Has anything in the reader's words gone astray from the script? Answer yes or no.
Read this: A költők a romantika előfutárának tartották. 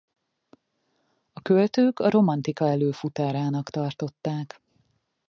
no